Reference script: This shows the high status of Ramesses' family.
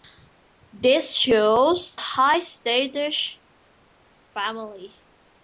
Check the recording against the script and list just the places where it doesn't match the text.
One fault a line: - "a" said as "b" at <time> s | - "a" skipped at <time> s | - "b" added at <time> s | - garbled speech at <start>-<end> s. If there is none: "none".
- "the" skipped at 2.0 s
- "of Ramesses" skipped at 3.4 s